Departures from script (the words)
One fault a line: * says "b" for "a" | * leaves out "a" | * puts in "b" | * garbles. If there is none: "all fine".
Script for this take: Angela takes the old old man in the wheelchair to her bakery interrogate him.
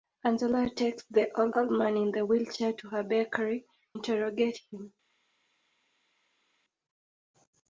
all fine